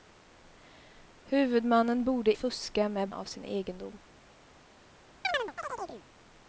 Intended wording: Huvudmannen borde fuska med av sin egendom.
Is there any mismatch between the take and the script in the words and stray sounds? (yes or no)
yes